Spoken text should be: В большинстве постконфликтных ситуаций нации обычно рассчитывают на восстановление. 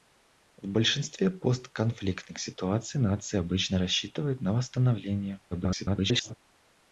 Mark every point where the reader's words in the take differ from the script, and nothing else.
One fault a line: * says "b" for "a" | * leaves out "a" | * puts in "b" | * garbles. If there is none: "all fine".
* garbles